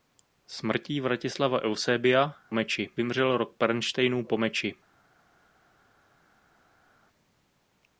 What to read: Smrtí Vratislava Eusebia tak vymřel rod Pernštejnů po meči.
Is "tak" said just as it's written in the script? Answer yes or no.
no